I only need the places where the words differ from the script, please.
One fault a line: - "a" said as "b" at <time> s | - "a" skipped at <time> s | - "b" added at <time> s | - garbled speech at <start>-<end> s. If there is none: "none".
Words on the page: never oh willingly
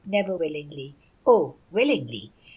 - "willingly" added at 0.3 s